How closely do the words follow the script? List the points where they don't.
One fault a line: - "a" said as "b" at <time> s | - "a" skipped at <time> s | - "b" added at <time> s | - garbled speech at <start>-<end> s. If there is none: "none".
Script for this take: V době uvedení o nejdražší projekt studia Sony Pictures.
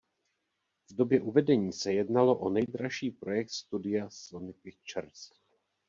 - "se jednalo" added at 1.7 s